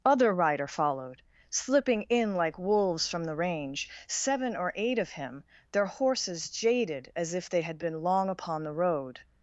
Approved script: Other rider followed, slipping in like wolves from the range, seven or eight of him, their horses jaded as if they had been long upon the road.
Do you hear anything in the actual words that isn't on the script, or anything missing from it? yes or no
no